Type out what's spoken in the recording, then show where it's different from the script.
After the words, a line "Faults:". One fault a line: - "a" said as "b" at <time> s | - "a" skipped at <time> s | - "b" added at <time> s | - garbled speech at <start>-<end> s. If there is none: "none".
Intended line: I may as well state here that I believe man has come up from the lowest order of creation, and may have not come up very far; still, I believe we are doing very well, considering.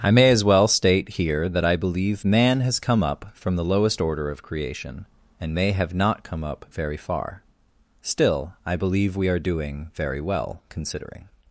I may as well state here that I believe man has come up from the lowest order of creation, and may have not come up very far; still, I believe we are doing very well, considering.
Faults:
none